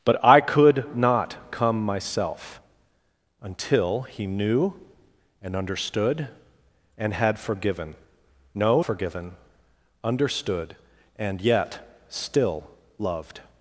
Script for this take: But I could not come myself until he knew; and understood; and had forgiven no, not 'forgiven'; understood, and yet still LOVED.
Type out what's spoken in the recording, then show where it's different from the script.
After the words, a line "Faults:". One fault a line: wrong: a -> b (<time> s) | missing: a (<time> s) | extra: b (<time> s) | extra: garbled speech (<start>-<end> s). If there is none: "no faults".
But I could not come myself until he knew; and understood; and had forgiven no, 'forgiven'; understood, and yet still LOVED.
Faults:
missing: not (8.8 s)